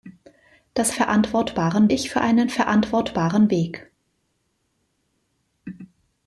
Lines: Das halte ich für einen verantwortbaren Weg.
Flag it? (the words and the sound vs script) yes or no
yes